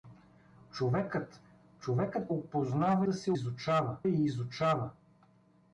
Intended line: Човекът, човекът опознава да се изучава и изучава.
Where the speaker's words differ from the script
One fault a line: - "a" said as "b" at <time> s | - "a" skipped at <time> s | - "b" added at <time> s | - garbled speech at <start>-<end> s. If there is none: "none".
none